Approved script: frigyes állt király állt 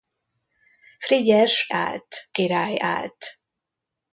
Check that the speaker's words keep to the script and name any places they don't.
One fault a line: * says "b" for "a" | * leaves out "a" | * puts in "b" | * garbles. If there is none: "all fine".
all fine